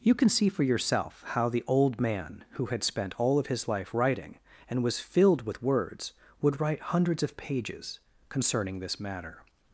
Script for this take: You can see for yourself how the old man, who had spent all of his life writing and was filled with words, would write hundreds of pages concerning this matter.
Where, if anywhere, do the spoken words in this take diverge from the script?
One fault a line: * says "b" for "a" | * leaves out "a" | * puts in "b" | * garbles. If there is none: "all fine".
all fine